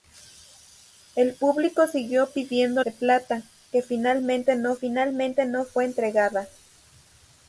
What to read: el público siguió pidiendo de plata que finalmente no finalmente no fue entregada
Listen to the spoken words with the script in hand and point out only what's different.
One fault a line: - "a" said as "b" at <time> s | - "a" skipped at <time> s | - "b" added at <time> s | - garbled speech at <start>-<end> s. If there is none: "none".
none